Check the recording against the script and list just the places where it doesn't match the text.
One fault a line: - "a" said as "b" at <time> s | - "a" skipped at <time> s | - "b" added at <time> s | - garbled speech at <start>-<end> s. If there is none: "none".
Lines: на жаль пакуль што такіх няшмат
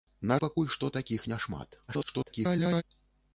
- "жаль" skipped at 0.4 s
- garbled speech at 1.9-2.8 s